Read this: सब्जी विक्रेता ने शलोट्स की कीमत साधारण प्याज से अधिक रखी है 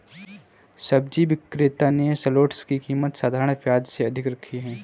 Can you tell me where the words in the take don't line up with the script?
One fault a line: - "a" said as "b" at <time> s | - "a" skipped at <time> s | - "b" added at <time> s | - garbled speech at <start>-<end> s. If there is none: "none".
none